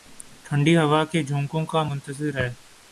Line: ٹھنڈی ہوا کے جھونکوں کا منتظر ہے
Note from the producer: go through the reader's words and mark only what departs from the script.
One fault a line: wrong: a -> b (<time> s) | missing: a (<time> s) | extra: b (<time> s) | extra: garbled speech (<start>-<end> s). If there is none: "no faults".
no faults